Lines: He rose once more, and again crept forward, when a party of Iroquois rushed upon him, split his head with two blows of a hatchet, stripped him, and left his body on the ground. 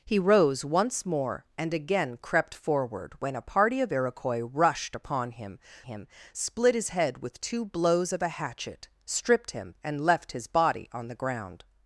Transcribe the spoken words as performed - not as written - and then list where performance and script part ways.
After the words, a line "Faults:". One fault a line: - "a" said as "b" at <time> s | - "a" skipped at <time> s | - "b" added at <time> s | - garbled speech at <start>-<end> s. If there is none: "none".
He rose once more, and again crept forward, when a party of Iroquois rushed upon him him, split his head with two blows of a hatchet, stripped him, and left his body on the ground.
Faults:
- "him" added at 5.8 s